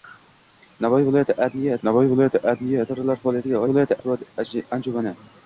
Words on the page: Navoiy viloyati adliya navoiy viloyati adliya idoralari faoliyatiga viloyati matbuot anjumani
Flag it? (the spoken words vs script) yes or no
no